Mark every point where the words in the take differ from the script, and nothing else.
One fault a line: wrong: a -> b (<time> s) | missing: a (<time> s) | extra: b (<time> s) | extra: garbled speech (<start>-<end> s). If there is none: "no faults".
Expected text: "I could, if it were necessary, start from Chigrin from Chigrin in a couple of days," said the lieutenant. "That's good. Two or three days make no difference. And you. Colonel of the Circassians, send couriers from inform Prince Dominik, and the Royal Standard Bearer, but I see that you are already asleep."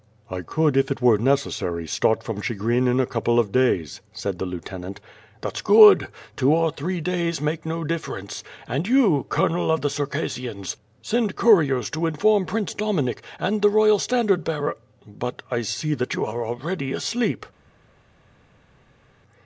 missing: from Chigrin (2.9 s)
wrong: from -> to (11.9 s)